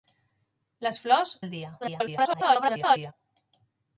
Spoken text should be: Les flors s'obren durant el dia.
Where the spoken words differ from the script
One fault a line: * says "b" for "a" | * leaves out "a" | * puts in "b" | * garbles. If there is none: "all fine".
* leaves out "s'obren durant"
* garbles